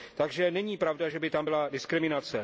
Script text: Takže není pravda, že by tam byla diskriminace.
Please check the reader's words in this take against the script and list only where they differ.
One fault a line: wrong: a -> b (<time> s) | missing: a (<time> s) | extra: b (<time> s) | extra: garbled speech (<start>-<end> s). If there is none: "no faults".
no faults